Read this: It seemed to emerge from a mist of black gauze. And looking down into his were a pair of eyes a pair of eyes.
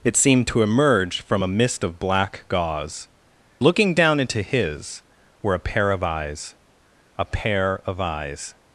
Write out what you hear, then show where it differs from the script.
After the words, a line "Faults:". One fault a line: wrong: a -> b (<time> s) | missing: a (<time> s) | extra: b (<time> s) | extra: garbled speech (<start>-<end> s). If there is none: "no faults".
It seemed to emerge from a mist of black gauze. Looking down into his were a pair of eyes a pair of eyes.
Faults:
missing: And (3.1 s)